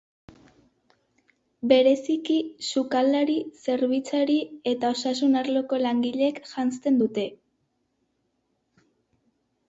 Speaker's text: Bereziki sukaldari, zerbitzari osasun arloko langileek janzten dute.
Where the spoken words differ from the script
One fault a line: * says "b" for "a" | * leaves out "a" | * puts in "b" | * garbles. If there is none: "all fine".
* puts in "eta"